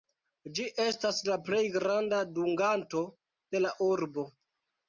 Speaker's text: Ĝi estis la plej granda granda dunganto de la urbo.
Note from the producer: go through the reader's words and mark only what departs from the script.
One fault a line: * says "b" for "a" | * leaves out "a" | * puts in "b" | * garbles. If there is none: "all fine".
* says "estas" for "estis"
* leaves out "granda"